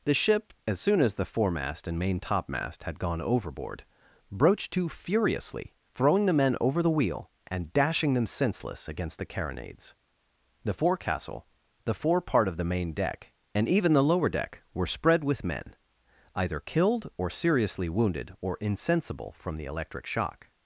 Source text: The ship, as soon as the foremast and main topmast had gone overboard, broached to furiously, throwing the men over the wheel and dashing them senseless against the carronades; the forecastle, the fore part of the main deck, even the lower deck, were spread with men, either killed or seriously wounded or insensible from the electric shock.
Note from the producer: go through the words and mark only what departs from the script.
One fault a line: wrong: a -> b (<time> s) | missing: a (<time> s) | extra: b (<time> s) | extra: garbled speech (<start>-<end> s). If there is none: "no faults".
extra: and (13.5 s)